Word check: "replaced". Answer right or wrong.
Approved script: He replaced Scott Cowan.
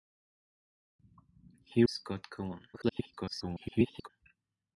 wrong